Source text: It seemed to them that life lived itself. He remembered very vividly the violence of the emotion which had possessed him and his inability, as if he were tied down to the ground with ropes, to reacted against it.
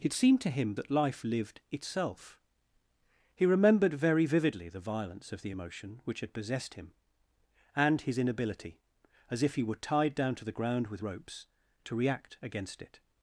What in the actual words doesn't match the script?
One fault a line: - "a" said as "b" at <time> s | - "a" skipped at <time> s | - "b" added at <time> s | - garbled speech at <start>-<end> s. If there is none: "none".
- "them" said as "him" at 0.5 s
- "reacted" said as "react" at 12.0 s